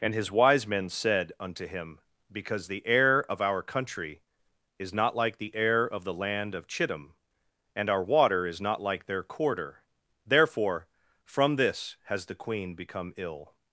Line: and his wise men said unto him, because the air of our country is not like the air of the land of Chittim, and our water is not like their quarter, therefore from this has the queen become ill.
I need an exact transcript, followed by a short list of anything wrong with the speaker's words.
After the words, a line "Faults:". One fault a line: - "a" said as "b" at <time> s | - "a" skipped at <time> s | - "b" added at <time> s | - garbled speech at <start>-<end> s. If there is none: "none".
and his wise men said unto him, because the air of our country is not like the air of the land of Chittim, and our water is not like their quarter, therefore from this has the queen become ill.
Faults:
none